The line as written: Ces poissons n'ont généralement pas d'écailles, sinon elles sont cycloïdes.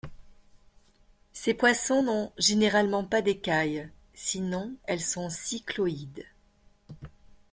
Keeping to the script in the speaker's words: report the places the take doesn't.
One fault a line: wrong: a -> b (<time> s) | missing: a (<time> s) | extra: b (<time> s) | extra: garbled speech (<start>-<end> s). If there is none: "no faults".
no faults